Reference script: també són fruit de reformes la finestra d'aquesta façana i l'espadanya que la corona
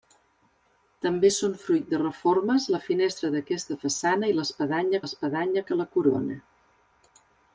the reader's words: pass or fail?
fail